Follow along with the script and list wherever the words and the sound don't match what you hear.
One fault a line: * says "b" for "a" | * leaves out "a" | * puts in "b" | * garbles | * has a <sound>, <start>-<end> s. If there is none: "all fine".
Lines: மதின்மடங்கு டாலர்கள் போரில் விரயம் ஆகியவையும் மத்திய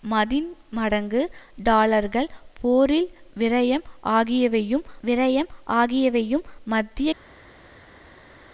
* puts in "விரயம் ஆகியவையும்"